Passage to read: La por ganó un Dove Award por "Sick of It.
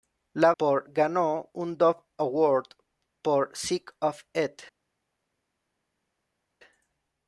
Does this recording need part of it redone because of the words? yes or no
no